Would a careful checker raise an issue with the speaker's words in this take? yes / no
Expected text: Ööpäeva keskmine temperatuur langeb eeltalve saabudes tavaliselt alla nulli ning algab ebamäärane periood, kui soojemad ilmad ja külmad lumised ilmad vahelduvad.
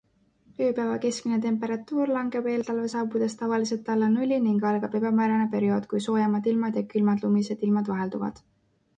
no